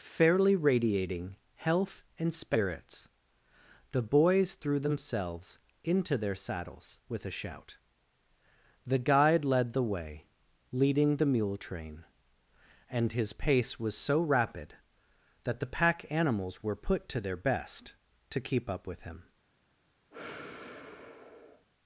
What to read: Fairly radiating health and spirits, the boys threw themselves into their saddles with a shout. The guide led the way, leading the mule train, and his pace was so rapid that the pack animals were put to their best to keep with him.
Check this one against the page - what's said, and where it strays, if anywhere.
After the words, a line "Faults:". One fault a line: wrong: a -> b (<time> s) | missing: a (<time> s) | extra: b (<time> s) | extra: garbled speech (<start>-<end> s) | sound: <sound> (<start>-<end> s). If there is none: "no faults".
Fairly radiating health and spirits, the boys threw themselves into their saddles with a shout. The guide led the way, leading the mule train, and his pace was so rapid that the pack animals were put to their best to keep up with him.
Faults:
extra: up (18.7 s)
sound: sigh (20.1-21.7 s)